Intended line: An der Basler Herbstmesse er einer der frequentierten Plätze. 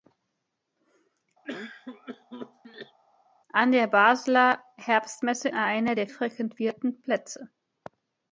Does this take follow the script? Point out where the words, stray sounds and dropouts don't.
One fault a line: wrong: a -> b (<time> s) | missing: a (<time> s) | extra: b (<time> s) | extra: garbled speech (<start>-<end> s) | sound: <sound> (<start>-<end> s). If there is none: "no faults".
sound: cough (1.4-3.0 s)